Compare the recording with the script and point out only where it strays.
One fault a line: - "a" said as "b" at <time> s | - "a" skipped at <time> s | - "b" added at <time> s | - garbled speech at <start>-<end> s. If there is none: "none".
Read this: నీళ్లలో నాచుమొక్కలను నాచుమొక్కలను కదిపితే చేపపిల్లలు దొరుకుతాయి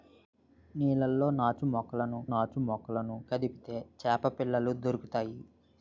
none